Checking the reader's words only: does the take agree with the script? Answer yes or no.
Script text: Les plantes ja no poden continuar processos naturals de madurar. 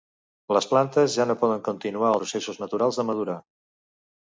yes